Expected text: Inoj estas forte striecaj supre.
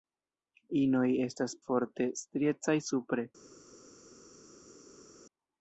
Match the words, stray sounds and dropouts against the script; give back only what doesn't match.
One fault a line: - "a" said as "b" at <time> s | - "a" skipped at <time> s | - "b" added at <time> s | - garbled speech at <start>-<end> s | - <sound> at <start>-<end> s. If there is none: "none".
none